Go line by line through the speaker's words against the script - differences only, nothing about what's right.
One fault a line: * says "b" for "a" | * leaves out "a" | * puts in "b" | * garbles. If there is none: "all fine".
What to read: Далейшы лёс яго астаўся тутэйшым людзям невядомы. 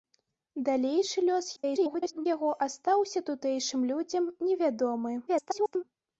* garbles
* garbles